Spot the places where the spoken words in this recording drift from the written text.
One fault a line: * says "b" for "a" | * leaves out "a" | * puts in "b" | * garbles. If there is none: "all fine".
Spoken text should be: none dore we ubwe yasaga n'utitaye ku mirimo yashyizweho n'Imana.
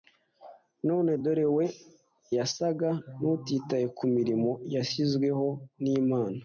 * leaves out "ubwe"